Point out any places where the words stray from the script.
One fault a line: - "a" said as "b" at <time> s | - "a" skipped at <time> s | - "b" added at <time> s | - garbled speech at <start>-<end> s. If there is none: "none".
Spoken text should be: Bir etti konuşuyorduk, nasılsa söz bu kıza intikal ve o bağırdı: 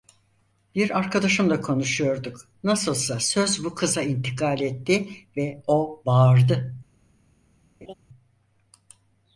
- "etti" said as "arkadaşımla" at 1.0 s
- "etti" added at 4.6 s